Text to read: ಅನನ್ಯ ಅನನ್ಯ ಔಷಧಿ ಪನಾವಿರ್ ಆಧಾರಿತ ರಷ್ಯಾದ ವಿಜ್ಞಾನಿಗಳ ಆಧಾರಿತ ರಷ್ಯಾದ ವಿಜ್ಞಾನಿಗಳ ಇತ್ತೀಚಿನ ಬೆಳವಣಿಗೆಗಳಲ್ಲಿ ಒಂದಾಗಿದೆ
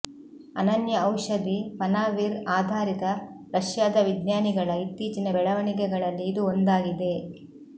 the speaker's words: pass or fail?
fail